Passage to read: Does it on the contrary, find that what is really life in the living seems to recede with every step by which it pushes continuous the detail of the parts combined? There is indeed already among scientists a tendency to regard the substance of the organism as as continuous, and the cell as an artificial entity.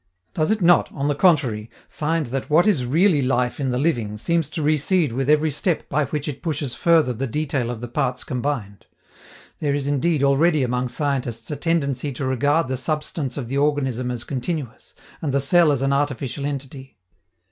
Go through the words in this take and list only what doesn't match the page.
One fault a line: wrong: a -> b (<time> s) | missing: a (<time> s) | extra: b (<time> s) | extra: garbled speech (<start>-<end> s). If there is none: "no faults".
extra: not (0.6 s)
wrong: continuous -> further (6.7 s)
missing: as (14.2 s)